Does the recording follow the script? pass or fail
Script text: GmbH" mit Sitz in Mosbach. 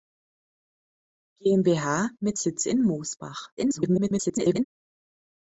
fail